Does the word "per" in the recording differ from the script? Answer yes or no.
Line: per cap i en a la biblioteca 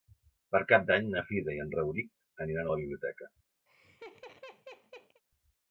no